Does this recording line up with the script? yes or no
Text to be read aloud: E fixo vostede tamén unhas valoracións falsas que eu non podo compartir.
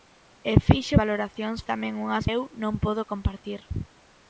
no